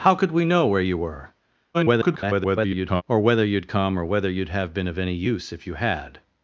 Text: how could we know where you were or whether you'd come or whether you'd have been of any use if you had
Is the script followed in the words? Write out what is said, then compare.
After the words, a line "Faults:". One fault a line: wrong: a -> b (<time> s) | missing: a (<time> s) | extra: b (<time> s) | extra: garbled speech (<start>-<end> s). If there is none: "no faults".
how could we know where you were [garbled] or whether you'd come or whether you'd have been of any use if you had
Faults:
extra: garbled speech (1.7-3.0 s)